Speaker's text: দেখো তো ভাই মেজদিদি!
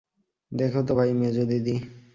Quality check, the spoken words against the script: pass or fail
pass